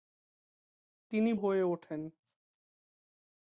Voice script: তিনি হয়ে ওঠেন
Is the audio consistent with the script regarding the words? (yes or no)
yes